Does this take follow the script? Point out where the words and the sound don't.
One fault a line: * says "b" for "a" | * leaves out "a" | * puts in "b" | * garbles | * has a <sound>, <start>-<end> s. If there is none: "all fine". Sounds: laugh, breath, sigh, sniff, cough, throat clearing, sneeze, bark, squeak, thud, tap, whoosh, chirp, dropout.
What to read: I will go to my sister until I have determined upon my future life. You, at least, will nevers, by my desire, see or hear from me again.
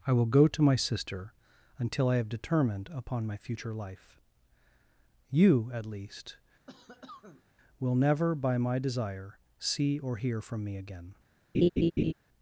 * has a cough, 6.7-7.4 s
* says "never" for "nevers"
* has a laugh, 11.5-12.1 s